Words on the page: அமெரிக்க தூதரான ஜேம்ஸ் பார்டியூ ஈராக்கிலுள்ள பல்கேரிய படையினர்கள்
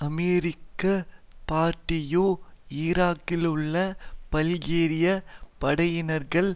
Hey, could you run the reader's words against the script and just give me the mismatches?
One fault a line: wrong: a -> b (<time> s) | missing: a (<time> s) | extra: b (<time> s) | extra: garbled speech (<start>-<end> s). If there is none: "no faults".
missing: தூதரான ஜேம்ஸ் (0.8 s)